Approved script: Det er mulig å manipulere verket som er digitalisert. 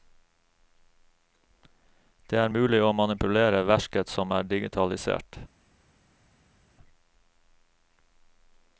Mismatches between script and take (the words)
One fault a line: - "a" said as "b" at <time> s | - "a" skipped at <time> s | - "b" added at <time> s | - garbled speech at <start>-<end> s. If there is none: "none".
none